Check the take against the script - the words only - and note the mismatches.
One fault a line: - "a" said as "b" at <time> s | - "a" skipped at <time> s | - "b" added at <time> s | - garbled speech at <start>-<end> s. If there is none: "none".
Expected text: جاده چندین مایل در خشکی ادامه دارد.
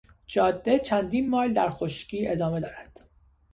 none